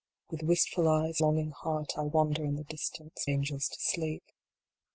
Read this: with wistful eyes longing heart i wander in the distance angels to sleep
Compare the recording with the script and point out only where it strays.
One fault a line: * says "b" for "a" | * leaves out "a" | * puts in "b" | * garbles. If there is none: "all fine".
all fine